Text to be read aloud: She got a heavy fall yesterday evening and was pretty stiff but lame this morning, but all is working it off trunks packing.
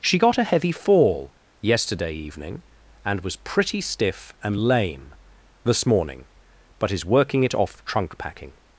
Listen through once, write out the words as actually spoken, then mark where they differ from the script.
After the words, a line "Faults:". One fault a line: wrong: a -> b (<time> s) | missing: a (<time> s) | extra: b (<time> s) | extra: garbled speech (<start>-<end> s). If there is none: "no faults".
She got a heavy fall yesterday evening and was pretty stiff and lame this morning, but is working it off trunk packing.
Faults:
wrong: but -> and (4.4 s)
missing: all (6.9 s)
wrong: trunks -> trunk (7.8 s)